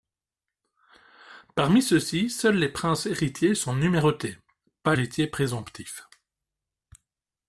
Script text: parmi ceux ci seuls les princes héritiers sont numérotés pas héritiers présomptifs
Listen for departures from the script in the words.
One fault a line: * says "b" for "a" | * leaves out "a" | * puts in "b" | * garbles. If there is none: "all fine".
all fine